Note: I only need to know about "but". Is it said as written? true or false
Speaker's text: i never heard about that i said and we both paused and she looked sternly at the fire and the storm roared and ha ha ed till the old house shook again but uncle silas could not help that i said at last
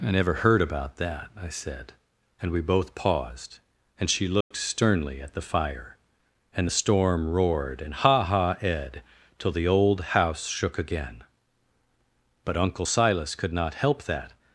true